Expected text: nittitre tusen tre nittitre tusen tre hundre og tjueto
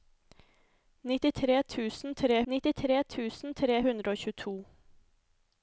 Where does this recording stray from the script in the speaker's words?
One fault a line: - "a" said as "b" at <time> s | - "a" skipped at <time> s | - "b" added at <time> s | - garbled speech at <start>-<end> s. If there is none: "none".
none